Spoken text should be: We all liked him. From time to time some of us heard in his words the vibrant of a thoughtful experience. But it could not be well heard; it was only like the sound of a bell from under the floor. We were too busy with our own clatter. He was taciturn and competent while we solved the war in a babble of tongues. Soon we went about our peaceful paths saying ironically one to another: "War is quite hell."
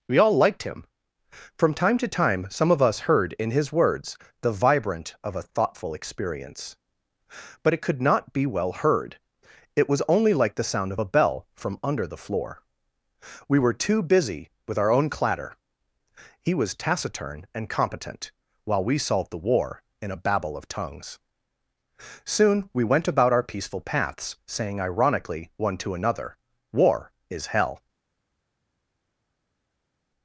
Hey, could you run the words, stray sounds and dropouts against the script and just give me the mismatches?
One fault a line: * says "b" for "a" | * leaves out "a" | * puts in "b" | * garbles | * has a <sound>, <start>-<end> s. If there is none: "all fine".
* leaves out "quite"